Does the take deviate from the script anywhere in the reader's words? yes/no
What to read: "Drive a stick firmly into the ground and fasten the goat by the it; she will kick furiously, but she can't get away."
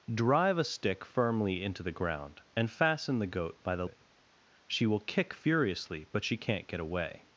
no